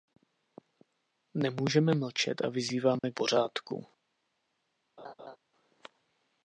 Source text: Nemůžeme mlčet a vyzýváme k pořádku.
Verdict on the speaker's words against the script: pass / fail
pass